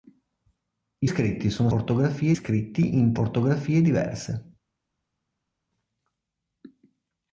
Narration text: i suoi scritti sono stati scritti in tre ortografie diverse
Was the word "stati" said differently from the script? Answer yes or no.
yes